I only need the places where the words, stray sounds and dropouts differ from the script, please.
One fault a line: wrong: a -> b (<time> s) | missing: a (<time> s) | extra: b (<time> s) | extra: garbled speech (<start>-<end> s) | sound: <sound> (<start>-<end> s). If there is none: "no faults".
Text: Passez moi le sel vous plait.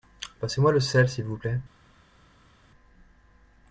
extra: s'il (1.1 s)